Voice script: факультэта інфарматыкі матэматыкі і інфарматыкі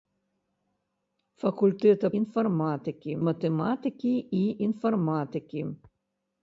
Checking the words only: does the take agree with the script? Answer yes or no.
yes